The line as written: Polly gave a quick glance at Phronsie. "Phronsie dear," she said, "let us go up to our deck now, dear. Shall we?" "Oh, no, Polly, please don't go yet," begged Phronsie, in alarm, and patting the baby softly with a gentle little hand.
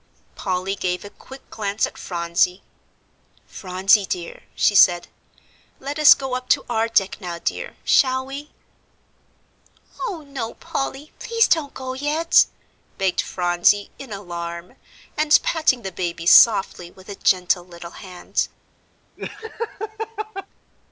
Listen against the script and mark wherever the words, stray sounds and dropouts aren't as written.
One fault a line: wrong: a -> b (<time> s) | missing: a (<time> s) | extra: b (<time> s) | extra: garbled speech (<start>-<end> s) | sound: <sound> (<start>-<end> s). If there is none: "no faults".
sound: laugh (19.2-20.5 s)